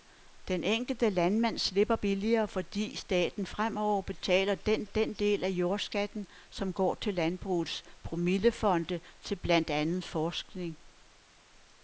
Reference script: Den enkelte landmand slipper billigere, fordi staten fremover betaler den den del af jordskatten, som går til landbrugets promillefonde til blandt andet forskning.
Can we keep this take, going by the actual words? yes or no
yes